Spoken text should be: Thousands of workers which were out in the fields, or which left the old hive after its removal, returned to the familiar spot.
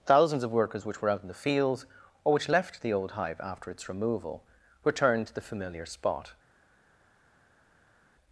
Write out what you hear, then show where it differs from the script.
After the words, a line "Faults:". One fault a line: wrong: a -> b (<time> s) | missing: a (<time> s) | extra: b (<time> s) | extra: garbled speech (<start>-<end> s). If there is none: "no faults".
Thousands of workers which were out in the fields, or which left the old hive after its removal, returned to the familiar spot.
Faults:
no faults